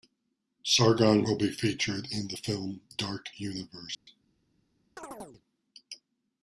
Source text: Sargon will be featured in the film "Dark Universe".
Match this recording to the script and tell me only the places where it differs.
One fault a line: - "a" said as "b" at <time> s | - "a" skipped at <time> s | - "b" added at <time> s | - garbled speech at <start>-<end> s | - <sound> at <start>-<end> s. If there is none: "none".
- dropout at 3.9-4.1 s
- chirp at 5.0-5.4 s